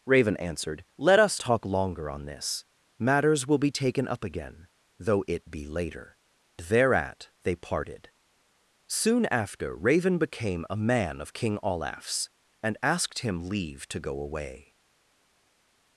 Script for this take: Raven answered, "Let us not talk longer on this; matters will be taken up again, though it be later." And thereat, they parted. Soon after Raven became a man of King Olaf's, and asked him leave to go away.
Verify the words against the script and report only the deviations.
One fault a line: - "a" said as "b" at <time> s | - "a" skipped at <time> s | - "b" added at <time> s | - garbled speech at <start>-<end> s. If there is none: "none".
- "not" skipped at 1.4 s
- "And" skipped at 6.2 s